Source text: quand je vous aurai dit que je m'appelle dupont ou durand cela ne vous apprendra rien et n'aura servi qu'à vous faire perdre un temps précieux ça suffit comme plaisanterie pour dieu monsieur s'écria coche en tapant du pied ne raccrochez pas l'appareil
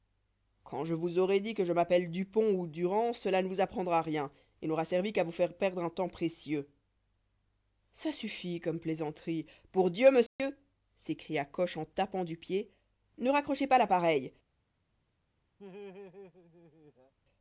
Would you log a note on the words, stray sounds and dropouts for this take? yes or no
yes